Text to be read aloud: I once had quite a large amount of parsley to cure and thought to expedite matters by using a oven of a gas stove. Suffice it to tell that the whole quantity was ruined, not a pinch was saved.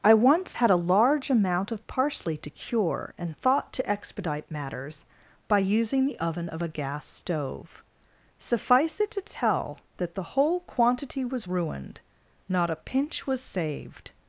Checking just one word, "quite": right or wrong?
wrong